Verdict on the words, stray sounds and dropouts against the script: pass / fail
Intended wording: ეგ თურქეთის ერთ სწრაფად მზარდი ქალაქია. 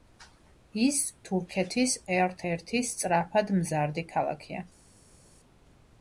fail